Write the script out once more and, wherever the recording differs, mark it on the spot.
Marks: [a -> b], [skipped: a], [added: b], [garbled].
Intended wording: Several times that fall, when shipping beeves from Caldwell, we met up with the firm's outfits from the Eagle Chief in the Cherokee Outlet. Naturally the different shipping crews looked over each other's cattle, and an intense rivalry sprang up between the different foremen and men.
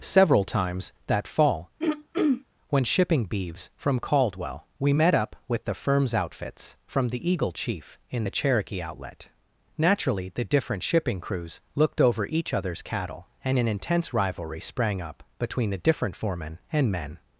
Several times that fall, when shipping beeves from Caldwell, we met up with the firm's outfits from the Eagle Chief in the Cherokee Outlet. Naturally the different shipping crews looked over each other's cattle, and an intense rivalry sprang up between the different foremen and men.